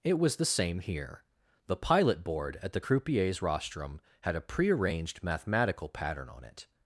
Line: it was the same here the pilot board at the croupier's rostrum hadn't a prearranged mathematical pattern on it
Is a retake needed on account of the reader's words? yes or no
yes